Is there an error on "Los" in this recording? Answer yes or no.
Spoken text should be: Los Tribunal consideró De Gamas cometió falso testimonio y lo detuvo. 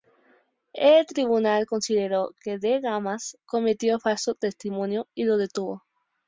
yes